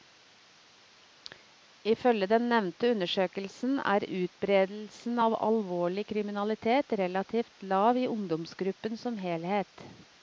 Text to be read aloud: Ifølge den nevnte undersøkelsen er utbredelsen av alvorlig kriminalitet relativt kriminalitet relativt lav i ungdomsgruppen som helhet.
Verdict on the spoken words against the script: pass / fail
fail